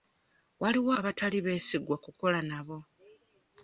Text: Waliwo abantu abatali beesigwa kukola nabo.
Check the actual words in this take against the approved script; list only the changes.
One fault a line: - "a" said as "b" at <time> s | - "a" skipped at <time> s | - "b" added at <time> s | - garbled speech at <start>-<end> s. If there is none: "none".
- "abantu" skipped at 0.9 s